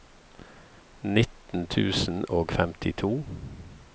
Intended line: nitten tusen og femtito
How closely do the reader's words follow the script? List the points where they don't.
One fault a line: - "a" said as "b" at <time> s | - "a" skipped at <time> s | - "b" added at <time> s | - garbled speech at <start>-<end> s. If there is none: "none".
none